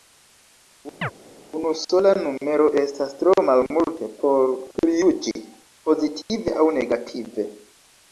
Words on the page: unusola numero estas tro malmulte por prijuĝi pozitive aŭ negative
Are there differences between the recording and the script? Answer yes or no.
no